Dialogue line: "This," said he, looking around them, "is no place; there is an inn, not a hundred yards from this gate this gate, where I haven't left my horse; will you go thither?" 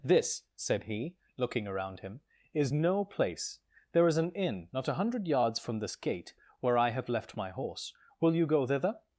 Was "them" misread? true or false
true